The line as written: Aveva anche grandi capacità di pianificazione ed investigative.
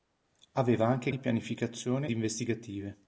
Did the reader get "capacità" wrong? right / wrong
wrong